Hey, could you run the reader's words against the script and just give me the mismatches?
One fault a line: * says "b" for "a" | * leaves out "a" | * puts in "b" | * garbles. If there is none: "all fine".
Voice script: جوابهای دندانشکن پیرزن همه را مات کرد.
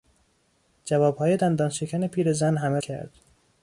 * leaves out "را مات"